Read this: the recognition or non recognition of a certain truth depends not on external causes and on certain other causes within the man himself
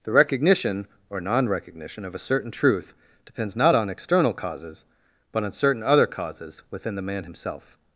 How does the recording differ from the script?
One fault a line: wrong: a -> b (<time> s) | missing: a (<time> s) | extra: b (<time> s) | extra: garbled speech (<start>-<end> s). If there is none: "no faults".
wrong: and -> but (5.3 s)